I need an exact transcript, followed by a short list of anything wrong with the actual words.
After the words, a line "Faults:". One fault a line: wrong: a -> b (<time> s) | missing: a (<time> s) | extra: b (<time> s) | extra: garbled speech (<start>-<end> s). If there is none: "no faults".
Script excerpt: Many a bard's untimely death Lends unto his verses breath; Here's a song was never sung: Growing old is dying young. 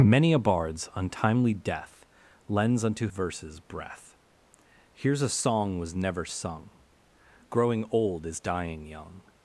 Many a bard's untimely death Lends unto verses breath; Here's a song was never sung: Growing old is dying young.
Faults:
missing: his (3.1 s)